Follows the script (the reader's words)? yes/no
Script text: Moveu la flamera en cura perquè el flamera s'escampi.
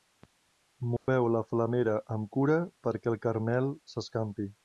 no